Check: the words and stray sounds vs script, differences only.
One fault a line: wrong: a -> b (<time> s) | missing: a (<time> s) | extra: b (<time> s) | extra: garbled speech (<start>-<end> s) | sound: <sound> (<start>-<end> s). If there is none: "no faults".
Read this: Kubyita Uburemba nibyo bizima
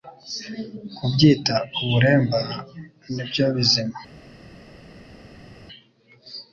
no faults